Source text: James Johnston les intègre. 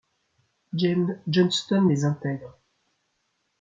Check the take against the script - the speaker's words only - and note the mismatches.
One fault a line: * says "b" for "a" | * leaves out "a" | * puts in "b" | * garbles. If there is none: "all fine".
all fine